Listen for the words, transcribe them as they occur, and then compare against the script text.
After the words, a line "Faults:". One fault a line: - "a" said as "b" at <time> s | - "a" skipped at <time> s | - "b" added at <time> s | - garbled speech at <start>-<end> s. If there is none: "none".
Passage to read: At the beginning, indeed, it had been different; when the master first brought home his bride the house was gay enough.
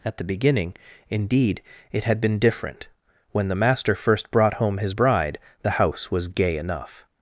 At the beginning, indeed, it had been different; when the master first brought home his bride the house was gay enough.
Faults:
none